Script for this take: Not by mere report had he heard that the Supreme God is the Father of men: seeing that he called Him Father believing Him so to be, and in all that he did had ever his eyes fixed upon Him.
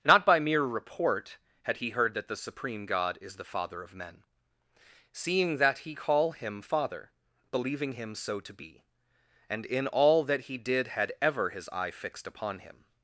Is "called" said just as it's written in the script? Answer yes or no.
no